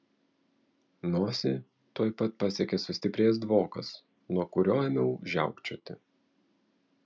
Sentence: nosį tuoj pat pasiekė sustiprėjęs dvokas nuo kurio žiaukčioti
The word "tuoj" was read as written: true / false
true